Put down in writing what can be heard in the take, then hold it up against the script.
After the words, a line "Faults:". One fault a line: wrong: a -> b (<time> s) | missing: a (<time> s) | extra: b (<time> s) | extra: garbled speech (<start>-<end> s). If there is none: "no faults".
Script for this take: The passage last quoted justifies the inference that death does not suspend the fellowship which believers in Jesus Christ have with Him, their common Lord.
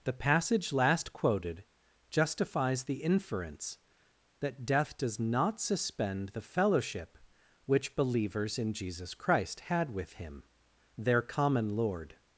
The passage last quoted justifies the inference that death does not suspend the fellowship which believers in Jesus Christ had with Him, their common Lord.
Faults:
wrong: have -> had (9.6 s)